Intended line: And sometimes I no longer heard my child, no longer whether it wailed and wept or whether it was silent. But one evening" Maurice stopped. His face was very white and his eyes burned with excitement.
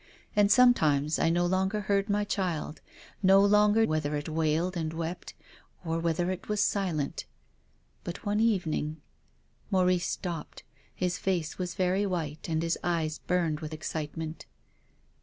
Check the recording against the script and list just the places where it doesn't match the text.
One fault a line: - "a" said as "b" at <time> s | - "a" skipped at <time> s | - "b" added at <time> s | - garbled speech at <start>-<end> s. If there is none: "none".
none